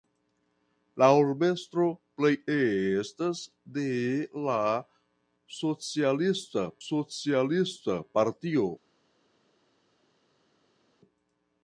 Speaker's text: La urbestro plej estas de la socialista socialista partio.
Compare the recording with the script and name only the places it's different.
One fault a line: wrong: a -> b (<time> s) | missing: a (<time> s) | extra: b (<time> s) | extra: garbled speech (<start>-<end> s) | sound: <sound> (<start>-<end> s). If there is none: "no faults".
no faults